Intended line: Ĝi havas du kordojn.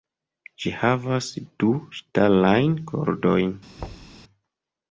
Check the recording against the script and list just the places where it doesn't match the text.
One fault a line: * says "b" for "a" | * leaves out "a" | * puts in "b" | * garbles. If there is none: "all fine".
* puts in "ŝtalajn"